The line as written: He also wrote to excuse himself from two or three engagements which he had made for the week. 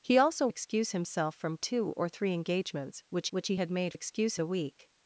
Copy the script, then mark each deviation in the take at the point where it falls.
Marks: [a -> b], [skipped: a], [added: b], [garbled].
He also [skipped: wrote to] excuse himself from two or three engagements which [added: which] he had made [for -> excuse] the week.